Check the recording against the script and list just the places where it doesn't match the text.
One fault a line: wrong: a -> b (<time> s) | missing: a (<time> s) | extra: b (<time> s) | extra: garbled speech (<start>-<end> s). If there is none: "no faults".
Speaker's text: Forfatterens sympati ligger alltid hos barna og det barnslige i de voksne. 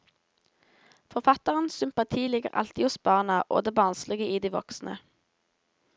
no faults